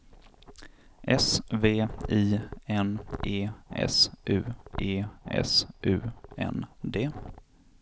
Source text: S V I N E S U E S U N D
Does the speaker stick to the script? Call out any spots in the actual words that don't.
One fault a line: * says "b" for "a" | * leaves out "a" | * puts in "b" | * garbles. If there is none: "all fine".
all fine